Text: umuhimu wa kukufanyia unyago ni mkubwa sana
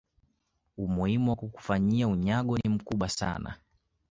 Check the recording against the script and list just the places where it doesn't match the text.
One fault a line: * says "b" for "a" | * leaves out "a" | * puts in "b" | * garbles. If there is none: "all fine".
all fine